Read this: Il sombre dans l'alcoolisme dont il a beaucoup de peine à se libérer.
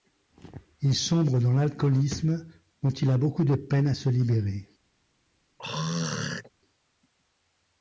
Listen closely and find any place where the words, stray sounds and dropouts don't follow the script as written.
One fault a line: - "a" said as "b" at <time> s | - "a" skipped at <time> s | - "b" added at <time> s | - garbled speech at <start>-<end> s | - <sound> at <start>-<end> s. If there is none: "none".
- throat clearing at 5.6-6.5 s